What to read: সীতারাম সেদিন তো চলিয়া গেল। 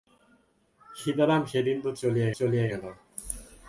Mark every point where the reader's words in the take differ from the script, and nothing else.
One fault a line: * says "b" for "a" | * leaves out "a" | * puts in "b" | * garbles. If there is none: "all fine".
* puts in "চলিয়া"